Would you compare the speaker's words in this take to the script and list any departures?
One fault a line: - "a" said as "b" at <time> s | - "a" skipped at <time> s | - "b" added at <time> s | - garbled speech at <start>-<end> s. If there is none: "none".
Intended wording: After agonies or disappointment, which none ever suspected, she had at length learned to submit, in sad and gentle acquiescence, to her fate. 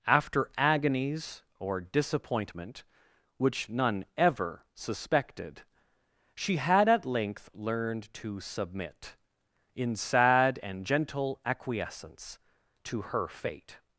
none